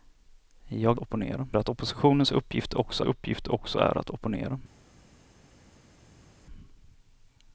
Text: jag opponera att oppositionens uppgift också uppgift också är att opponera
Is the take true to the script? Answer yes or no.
yes